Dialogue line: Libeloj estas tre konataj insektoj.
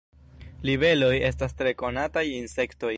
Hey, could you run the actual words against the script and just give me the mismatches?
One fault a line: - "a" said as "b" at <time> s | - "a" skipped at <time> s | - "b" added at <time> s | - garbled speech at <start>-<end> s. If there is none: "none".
none